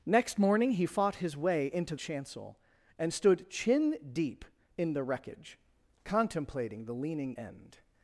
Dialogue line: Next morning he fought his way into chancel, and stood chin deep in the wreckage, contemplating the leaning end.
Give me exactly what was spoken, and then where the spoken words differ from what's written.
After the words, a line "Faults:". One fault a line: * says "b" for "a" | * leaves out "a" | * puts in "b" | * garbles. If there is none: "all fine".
Next morning he fought his way into chancel, and stood chin deep in the wreckage, contemplating the leaning end.
Faults:
all fine